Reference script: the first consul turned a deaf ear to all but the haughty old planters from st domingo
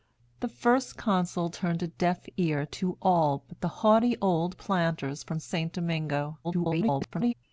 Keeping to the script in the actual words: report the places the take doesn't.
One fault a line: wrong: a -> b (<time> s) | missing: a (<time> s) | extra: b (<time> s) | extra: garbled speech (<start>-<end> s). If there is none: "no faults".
extra: garbled speech (6.4-7.3 s)